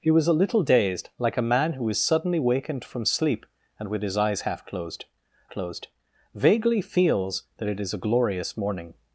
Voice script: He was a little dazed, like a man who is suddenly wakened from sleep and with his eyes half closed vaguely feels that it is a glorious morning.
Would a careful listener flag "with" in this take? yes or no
no